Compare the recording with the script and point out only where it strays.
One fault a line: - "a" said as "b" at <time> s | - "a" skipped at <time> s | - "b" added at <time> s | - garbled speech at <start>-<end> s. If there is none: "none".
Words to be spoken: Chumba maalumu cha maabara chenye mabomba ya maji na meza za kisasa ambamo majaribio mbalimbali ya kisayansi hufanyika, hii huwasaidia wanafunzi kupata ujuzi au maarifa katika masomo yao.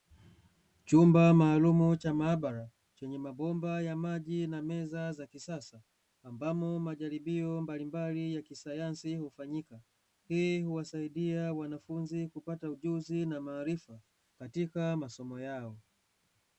- "au" said as "na" at 13.2 s